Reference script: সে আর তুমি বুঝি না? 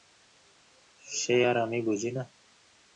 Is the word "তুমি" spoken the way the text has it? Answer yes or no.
no